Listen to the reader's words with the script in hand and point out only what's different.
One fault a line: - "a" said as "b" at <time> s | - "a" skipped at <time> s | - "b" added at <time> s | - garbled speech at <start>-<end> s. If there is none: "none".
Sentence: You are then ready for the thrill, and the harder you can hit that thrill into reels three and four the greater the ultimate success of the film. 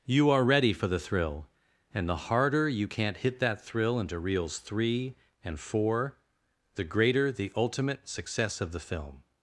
- "then" skipped at 0.4 s
- "can" said as "can't" at 2.8 s